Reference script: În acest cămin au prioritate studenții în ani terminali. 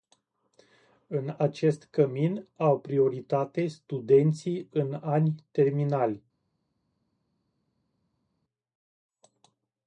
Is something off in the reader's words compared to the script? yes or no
no